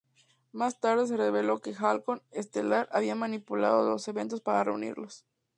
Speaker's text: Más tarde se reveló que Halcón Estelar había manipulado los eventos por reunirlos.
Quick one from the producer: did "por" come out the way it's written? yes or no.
no